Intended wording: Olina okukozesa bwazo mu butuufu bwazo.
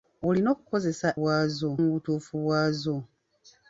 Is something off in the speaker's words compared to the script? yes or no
no